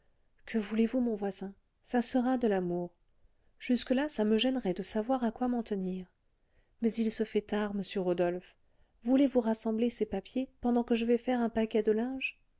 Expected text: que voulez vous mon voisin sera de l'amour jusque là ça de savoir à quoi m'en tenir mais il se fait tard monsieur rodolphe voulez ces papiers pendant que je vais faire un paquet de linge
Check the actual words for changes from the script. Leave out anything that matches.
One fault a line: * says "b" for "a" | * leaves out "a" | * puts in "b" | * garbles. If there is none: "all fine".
* puts in "ça"
* puts in "me gênerait"
* puts in "vous rassembler"